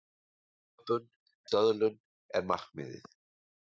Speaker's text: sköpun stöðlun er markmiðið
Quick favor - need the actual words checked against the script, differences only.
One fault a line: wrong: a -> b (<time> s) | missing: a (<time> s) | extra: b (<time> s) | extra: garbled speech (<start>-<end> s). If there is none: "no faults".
no faults